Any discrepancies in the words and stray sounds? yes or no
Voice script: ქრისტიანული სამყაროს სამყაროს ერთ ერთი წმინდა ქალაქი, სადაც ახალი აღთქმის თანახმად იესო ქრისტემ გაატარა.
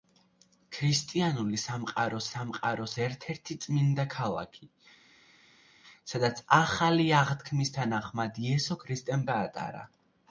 no